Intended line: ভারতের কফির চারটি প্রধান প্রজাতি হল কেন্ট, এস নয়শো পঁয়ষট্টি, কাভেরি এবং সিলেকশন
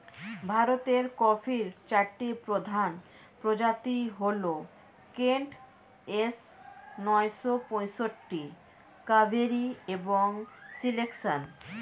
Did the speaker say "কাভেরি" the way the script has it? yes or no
yes